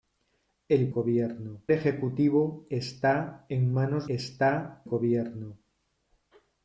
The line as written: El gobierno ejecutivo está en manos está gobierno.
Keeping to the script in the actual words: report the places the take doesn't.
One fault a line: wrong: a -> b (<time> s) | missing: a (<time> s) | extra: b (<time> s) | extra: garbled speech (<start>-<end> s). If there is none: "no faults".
no faults